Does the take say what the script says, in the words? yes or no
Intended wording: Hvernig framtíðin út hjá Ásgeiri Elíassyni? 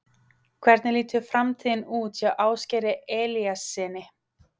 no